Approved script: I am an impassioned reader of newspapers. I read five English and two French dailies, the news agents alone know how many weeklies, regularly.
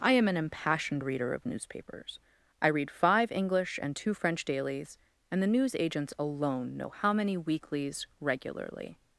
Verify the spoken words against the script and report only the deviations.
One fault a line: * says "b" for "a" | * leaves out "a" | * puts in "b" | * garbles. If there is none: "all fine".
* puts in "and"